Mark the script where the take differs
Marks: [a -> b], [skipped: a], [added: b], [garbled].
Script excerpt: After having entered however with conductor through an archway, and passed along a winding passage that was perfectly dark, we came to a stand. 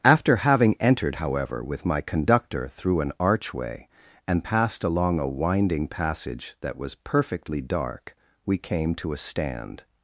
After having entered however with [added: my] conductor through an archway, and passed along a winding passage that was perfectly dark, we came to a stand.